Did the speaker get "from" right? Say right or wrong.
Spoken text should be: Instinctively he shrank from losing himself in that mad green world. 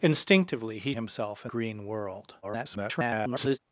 wrong